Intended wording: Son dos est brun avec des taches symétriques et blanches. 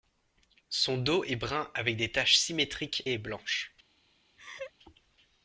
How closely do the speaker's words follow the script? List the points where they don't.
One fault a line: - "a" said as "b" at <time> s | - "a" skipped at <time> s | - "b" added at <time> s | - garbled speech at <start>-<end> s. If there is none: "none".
none